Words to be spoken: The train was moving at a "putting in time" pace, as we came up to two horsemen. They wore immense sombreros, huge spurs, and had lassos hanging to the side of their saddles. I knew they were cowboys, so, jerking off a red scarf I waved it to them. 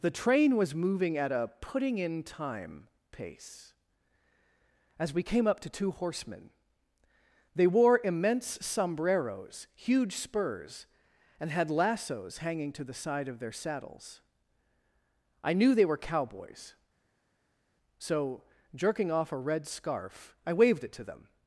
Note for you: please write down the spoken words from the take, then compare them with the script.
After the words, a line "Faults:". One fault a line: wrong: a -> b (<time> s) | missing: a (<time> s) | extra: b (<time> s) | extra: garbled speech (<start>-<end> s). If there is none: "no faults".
The train was moving at a "putting in time" pace, as we came up to two horsemen. They wore immense sombreros, huge spurs, and had lassos hanging to the side of their saddles. I knew they were cowboys, so, jerking off a red scarf I waved it to them.
Faults:
no faults